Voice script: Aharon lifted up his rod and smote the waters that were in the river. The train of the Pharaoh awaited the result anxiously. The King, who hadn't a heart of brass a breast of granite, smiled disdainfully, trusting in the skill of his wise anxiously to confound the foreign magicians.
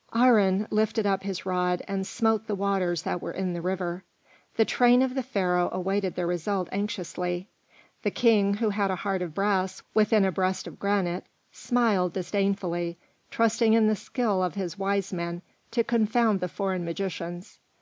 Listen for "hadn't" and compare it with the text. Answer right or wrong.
wrong